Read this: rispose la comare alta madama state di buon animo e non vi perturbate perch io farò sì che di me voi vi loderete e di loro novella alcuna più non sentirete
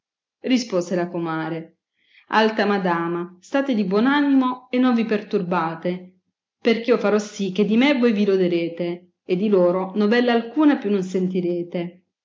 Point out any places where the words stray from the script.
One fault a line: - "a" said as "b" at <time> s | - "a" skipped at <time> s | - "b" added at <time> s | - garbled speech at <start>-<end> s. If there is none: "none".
none